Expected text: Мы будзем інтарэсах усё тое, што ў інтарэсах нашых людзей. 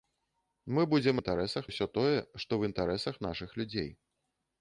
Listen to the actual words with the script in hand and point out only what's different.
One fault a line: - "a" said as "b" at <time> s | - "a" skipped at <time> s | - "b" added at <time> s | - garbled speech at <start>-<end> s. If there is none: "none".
none